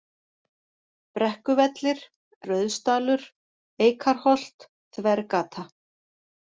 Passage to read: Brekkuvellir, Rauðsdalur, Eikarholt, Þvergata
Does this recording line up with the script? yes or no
yes